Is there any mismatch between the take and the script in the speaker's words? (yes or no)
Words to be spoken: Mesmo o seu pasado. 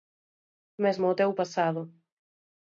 yes